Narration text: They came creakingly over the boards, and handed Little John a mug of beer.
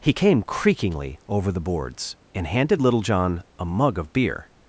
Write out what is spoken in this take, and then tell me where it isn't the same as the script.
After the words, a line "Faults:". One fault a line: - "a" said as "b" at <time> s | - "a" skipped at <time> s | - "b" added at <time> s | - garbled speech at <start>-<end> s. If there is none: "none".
He came creakingly over the boards, and handed Little John a mug of beer.
Faults:
- "They" said as "He" at 0.0 s